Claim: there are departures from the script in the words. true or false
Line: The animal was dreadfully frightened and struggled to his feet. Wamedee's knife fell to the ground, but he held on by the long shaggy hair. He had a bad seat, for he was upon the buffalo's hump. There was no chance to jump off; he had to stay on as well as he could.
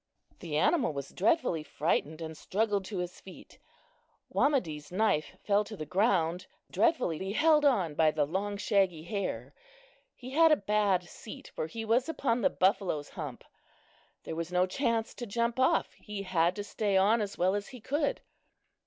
true